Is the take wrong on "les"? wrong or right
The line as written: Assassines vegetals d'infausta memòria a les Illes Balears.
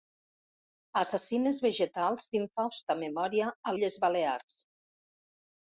wrong